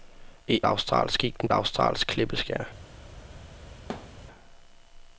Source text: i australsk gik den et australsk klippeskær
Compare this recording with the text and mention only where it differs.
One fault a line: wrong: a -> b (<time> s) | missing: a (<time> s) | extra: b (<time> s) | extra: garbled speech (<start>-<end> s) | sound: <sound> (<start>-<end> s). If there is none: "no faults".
sound: thud (3.9-4.2 s)